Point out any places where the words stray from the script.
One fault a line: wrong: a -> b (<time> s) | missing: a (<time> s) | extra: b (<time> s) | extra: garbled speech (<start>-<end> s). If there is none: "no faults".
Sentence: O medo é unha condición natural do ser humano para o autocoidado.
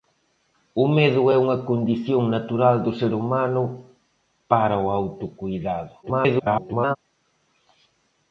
extra: garbled speech (6.0-7.0 s)